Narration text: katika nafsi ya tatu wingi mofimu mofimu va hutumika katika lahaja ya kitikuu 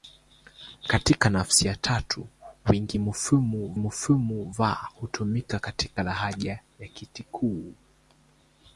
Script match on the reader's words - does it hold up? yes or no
yes